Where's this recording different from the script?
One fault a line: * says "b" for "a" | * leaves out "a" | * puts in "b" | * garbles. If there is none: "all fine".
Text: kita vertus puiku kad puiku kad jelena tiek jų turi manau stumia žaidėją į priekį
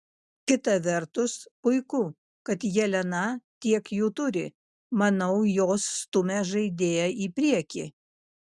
* leaves out "puiku kad"
* puts in "jos"